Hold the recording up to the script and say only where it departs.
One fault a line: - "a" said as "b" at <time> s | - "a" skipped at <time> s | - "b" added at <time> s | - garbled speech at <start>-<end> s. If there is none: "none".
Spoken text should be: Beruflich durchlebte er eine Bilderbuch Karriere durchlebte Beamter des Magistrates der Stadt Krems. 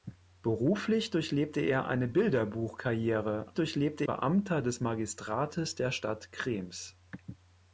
none